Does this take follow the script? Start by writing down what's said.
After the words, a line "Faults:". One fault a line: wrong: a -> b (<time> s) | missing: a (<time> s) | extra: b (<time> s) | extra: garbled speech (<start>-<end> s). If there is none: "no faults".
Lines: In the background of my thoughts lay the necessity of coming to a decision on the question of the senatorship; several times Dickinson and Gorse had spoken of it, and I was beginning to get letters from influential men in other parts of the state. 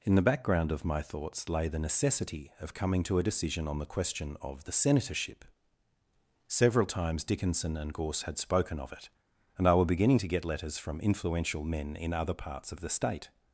In the background of my thoughts lay the necessity of coming to a decision on the question of the senatorship; several times Dickinson and Gorse had spoken of it, and I were beginning to get letters from influential men in other parts of the state.
Faults:
wrong: was -> were (9.7 s)